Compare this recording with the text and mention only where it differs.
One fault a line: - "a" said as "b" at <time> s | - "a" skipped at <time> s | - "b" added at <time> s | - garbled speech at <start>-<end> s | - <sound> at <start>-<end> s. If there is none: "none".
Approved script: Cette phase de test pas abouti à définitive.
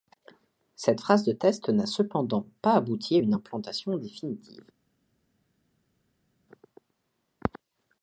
- "n'a cependant" added at 1.7 s
- "une implantation" added at 3.2 s